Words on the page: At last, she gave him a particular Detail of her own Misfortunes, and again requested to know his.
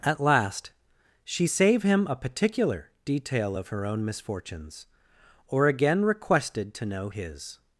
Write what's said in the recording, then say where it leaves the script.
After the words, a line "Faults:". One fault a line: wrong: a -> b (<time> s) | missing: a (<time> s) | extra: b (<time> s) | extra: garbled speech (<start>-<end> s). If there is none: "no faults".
At last, she save him a particular Detail of her own Misfortunes, or again requested to know his.
Faults:
wrong: gave -> save (1.5 s)
wrong: and -> or (5.5 s)